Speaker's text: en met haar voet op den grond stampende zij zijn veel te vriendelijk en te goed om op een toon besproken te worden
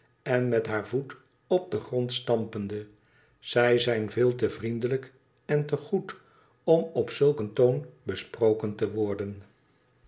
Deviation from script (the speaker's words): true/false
true